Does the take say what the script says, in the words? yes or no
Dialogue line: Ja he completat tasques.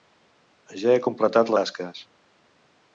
yes